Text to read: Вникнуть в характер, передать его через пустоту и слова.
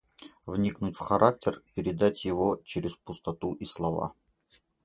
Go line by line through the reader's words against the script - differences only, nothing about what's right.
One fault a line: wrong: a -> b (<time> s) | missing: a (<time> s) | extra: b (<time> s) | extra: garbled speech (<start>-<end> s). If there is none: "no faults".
no faults